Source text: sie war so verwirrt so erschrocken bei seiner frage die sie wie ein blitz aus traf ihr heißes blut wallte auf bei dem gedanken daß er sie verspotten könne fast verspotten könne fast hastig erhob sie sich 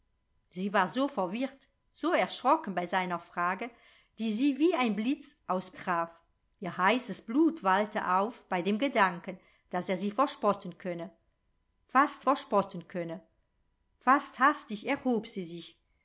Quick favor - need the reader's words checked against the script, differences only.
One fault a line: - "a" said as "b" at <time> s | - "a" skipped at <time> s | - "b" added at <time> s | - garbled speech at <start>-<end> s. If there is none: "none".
none